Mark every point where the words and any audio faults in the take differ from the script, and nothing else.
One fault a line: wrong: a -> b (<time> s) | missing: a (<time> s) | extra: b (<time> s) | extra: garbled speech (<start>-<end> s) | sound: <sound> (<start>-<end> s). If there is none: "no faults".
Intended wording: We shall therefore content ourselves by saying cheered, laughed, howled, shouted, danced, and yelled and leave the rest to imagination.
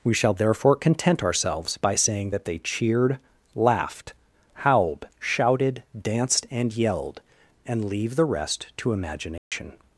extra: that they (2.3 s)
sound: dropout (9.4-9.5 s)